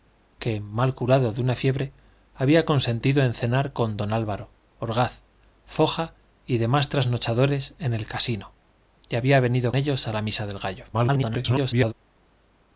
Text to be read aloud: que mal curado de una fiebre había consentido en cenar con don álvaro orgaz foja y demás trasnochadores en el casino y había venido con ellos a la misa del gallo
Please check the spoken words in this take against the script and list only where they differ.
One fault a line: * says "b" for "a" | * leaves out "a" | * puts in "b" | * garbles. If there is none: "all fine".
* leaves out "con"
* garbles